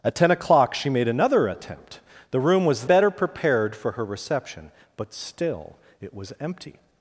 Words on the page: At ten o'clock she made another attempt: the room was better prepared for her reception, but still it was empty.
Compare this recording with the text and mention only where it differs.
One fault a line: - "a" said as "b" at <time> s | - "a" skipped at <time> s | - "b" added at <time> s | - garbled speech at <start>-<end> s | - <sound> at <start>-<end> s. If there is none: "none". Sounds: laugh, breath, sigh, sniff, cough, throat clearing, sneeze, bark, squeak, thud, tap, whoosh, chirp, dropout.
none